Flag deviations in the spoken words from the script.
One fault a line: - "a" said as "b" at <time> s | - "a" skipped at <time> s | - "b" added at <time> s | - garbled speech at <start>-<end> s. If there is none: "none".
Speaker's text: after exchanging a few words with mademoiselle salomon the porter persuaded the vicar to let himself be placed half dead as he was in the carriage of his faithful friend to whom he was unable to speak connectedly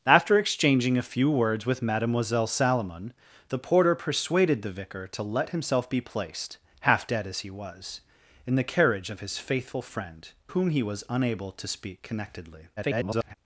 - "to" skipped at 10.3 s
- garbled speech at 12.8-13.3 s